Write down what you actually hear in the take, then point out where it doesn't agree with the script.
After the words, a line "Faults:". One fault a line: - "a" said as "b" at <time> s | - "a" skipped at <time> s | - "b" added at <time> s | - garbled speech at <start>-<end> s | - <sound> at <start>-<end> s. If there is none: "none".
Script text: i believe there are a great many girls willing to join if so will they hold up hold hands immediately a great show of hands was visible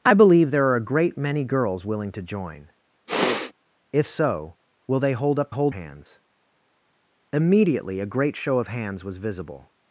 i believe there are a great many girls willing to join if so will they hold up hold hands immediately a great show of hands was visible
Faults:
- sniff at 3.1-3.5 s